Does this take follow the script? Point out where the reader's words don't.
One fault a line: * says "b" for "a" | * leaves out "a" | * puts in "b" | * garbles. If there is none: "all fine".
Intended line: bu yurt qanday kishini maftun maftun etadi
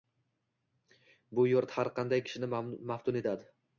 * puts in "har"
* leaves out "maftun"